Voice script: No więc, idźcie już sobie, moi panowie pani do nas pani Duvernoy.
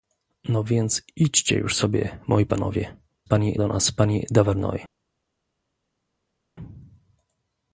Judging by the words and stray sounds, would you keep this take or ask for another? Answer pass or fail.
pass